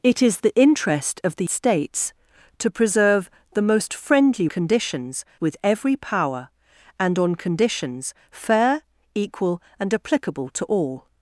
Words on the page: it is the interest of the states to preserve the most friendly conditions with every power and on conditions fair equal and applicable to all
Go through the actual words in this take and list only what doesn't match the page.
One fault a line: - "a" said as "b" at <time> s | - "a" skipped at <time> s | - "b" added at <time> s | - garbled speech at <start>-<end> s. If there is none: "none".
none